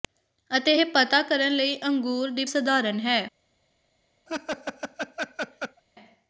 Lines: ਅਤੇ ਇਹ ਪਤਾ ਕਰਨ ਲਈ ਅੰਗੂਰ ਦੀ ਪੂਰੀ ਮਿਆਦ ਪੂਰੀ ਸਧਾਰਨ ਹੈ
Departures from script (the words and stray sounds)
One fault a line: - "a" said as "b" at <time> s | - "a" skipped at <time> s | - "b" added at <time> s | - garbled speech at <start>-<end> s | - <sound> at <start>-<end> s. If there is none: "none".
- "ਪੂਰੀ ਮਿਆਦ ਪੂਰੀ" skipped at 2.4 s
- laugh at 4.3-5.8 s